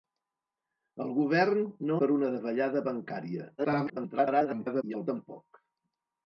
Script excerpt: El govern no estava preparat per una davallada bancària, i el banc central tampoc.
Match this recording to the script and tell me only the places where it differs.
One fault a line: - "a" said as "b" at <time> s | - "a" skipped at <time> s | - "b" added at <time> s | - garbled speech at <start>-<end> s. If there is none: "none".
- "estava preparat" skipped at 2.0 s
- garbled speech at 3.6-4.8 s
- "banc central" skipped at 5.1 s